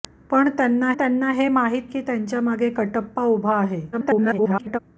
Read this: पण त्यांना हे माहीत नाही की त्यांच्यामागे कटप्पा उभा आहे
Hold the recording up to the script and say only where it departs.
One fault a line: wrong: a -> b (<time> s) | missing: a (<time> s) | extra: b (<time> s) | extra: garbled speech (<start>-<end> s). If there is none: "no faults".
extra: त्यांना (0.9 s)
missing: नाही (1.9 s)
extra: garbled speech (3.9-4.8 s)